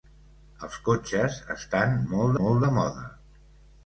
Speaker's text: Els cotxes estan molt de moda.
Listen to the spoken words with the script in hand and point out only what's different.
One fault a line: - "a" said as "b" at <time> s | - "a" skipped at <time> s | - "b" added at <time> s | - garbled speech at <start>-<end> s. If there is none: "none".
- "molt" added at 2.4 s